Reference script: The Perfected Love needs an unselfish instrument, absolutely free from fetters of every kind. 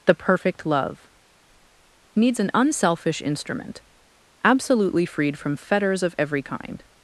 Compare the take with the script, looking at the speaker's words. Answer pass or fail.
fail